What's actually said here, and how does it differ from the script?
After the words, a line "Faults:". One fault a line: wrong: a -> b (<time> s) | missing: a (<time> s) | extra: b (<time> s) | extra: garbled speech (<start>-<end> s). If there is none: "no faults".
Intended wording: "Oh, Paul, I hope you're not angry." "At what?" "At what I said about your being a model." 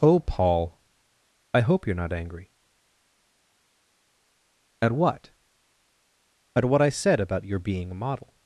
"Oh, Paul, I hope you're not angry." "At what?" "At what I said about your being a model."
Faults:
no faults